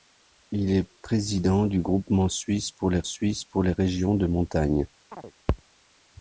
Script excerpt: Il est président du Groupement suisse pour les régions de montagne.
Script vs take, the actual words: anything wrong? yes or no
yes